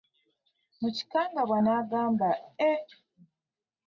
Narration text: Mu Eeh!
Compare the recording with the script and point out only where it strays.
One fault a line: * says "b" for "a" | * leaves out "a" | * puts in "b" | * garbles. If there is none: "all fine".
* puts in "kikangabwa n'agamba"